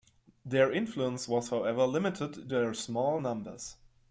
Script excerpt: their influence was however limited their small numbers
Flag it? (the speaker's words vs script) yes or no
no